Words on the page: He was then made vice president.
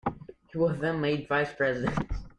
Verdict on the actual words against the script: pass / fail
pass